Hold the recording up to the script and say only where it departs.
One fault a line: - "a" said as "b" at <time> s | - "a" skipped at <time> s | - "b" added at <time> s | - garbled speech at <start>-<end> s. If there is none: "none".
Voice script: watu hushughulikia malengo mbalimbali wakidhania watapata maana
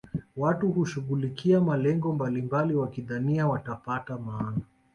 none